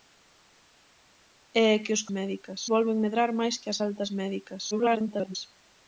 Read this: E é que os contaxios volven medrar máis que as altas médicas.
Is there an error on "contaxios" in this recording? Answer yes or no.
yes